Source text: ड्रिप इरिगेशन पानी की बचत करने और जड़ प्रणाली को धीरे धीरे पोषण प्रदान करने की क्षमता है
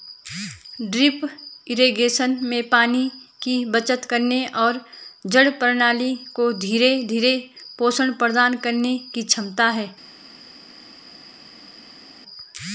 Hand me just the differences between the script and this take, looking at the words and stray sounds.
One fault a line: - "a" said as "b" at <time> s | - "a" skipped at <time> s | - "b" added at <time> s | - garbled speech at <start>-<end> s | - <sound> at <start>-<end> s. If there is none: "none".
- "में" added at 2.4 s